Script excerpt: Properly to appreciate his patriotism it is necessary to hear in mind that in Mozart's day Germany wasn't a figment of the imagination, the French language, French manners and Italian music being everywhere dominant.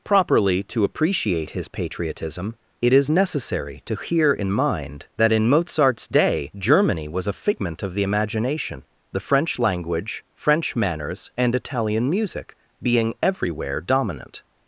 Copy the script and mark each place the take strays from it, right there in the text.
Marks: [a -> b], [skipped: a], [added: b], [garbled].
Properly to appreciate his patriotism it is necessary to hear in mind that in Mozart's day Germany [wasn't -> was] a figment of the imagination, the French language, French manners and Italian music being everywhere dominant.